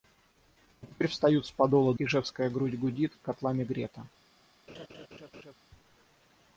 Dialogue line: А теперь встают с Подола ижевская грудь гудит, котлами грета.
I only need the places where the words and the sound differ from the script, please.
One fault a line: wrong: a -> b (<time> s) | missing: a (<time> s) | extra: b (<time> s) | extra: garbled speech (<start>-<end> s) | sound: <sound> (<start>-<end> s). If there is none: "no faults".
sound: laugh (4.7-5.6 s)